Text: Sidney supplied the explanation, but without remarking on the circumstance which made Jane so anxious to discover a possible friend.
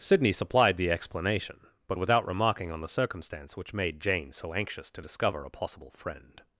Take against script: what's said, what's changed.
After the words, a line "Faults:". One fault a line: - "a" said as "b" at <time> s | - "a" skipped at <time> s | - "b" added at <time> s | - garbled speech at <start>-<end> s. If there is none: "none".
Sidney supplied the explanation, but without remarking on the circumstance which made Jane so anxious to discover a possible friend.
Faults:
none